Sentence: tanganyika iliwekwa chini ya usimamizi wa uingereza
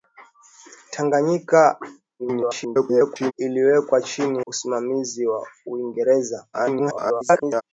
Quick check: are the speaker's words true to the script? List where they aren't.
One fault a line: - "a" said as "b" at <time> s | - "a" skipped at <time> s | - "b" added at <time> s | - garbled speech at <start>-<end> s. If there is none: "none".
- garbled speech at 2.2-3.3 s
- "ya" skipped at 4.5 s
- garbled speech at 6.5-7.6 s